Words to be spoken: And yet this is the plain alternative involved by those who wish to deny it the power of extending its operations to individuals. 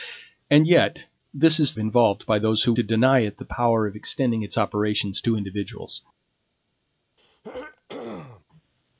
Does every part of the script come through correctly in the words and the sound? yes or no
no